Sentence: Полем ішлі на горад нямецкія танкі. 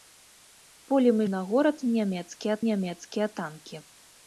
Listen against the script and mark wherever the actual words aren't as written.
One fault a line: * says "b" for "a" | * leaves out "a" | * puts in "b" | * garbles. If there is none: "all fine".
* leaves out "ішлі"
* puts in "нямецкія"